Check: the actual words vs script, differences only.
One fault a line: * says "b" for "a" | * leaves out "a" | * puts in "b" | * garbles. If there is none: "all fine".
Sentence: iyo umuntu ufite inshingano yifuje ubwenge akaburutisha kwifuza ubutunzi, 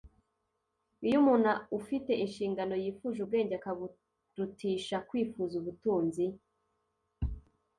all fine